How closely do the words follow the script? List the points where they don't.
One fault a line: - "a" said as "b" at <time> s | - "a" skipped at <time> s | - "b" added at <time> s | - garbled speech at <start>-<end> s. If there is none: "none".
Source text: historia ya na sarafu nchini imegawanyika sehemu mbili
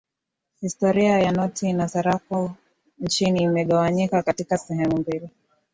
- "noti" added at 1.3 s
- "katika" added at 4.2 s